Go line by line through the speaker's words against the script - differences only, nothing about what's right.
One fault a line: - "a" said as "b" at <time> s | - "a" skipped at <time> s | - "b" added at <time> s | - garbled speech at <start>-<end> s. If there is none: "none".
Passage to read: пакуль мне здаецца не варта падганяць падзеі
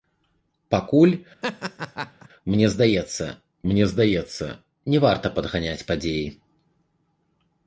- "мне здаецца" added at 3.7 s